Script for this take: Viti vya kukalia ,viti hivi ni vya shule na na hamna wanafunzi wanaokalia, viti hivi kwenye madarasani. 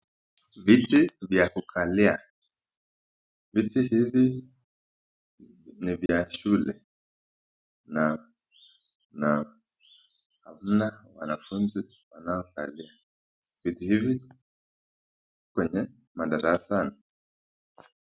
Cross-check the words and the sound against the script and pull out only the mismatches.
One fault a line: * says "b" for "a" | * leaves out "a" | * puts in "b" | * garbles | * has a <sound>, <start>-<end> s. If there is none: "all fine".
* has a dropout, 6.1-6.1 s